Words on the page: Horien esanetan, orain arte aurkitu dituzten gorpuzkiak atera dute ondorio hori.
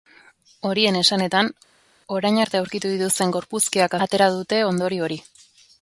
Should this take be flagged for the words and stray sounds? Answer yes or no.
no